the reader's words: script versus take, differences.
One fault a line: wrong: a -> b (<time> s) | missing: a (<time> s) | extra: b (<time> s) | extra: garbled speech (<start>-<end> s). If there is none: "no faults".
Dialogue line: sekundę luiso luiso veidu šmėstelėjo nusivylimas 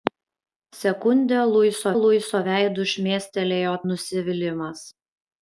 no faults